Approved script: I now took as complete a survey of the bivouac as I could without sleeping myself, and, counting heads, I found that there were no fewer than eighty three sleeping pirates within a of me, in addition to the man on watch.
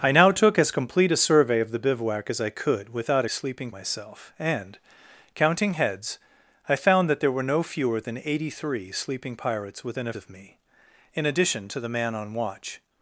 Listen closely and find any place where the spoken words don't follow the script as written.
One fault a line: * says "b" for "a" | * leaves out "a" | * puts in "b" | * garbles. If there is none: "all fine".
all fine